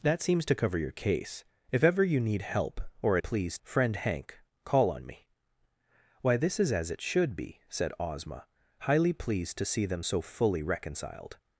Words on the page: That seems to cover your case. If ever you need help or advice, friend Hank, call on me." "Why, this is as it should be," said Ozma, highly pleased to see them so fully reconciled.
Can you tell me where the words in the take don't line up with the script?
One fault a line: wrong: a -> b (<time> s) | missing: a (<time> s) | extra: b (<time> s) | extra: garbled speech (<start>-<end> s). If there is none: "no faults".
wrong: advice -> pleased (3.2 s)